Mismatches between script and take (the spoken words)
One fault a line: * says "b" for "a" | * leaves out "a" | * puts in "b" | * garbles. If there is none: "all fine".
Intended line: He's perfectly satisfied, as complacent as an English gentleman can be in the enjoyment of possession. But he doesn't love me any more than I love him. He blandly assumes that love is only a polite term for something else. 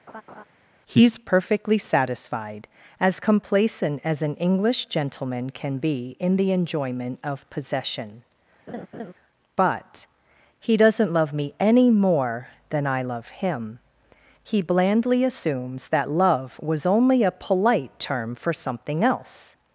* says "was" for "is"